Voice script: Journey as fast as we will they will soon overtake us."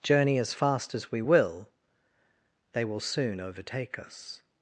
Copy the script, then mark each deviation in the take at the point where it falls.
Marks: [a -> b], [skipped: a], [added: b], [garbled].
Journey as fast as we will they will soon overtake us."